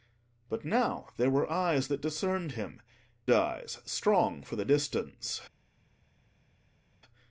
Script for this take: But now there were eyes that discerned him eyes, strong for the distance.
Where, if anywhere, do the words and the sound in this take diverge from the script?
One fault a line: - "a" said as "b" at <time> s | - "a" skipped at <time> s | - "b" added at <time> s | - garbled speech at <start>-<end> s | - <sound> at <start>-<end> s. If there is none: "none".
none